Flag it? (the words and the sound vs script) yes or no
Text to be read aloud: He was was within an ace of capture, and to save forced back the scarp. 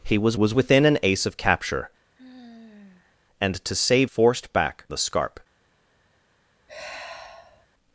yes